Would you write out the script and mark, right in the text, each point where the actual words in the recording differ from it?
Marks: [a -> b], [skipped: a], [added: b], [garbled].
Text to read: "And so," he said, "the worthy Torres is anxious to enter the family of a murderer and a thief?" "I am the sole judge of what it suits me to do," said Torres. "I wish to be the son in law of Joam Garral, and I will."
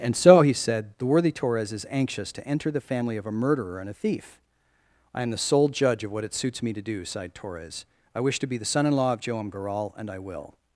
"And so," he said, "the worthy Torres is anxious to enter the family of a murderer and a thief?" "I am the sole judge of what it suits me to do," [said -> sighed] Torres. "I wish to be the son in law of Joam Garral, and I will."